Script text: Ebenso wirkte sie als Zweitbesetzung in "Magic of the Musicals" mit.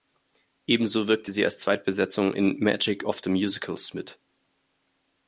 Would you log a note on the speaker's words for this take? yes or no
no